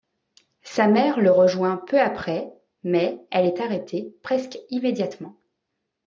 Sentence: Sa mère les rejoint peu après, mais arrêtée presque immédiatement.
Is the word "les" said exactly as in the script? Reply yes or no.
no